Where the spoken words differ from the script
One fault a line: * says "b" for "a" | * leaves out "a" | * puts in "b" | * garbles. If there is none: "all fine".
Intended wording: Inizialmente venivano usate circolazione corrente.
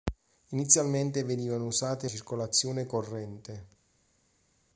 all fine